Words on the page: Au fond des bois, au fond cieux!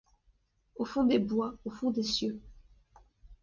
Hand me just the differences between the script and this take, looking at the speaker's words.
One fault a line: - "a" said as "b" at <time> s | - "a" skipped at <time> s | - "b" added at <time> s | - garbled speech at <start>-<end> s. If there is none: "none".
- "des" added at 1.9 s